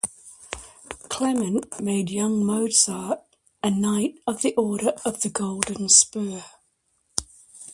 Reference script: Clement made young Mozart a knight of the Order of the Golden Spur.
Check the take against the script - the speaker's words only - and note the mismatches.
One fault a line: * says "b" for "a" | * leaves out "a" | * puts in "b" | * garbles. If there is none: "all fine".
all fine